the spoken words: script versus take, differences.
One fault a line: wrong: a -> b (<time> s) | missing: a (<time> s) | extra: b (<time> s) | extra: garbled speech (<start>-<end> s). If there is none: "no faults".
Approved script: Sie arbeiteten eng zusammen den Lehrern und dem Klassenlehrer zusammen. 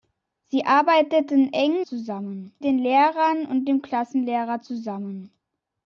no faults